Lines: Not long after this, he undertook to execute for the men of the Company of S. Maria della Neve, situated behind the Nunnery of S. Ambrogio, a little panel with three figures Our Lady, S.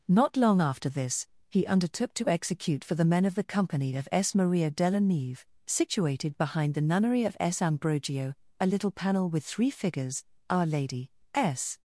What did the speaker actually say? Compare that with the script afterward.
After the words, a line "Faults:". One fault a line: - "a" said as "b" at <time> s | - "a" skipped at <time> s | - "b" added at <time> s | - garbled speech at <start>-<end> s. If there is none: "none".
Not long after this, he undertook to execute for the men of the Company of S. Maria della Neve, situated behind the Nunnery of S. Ambrogio, a little panel with three figures Our Lady, S.
Faults:
none